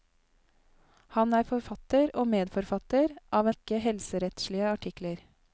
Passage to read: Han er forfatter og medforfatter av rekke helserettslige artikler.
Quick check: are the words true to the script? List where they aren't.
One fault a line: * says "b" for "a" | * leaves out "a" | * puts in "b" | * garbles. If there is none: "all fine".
all fine